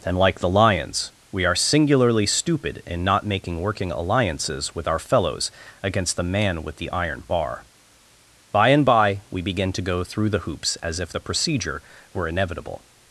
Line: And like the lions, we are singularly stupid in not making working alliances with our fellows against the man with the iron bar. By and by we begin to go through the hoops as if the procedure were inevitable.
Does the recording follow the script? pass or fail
pass